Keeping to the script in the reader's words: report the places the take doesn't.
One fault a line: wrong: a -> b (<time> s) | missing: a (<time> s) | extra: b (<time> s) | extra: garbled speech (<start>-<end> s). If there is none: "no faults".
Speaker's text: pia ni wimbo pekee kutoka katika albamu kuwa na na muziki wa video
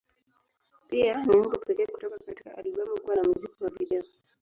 missing: na (3.2 s)